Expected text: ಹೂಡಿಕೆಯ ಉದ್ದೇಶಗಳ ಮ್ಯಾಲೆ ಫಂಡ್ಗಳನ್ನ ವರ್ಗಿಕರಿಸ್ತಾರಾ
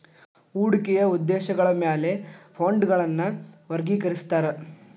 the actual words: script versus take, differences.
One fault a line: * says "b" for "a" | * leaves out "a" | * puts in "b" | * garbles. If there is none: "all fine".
all fine